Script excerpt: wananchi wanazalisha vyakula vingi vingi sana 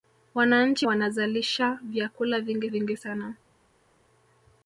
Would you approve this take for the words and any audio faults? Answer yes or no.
yes